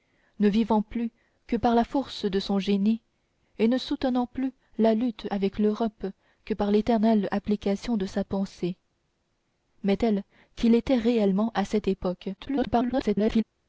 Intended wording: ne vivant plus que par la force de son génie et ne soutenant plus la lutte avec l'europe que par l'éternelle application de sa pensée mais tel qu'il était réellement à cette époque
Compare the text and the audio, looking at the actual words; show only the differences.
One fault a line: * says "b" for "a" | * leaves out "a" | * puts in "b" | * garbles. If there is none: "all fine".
* garbles